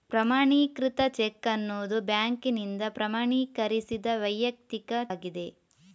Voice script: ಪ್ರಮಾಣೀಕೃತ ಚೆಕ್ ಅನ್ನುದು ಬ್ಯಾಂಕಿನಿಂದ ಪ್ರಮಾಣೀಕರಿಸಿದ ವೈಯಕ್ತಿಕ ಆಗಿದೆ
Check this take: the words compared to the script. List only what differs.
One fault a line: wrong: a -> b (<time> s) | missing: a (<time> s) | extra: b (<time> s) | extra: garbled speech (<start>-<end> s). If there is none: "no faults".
no faults